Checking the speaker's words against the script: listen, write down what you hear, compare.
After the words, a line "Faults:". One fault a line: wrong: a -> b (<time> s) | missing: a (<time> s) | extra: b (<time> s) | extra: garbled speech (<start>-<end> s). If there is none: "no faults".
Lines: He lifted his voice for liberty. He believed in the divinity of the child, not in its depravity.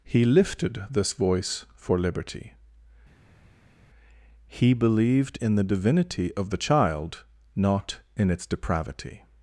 He lifted this voice for liberty. He believed in the divinity of the child, not in its depravity.
Faults:
wrong: his -> this (0.9 s)